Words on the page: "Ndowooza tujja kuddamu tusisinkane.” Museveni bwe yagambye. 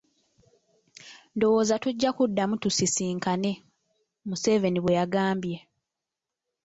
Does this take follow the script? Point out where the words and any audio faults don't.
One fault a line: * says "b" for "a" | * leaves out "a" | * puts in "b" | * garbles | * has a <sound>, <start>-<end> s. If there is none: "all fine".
all fine